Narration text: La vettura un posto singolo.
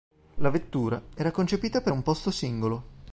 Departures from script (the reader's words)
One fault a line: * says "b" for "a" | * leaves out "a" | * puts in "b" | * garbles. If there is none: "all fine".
* puts in "era concepita per"